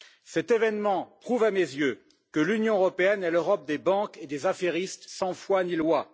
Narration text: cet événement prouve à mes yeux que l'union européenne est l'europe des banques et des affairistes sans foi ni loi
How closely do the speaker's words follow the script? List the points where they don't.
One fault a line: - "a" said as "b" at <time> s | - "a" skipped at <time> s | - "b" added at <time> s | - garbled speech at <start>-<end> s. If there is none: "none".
none